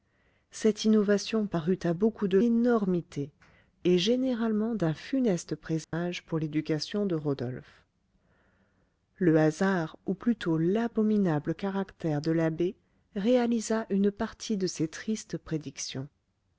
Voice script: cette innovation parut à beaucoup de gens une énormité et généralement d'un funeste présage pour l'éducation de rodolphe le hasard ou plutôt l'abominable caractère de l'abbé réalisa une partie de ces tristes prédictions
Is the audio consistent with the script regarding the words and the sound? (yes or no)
no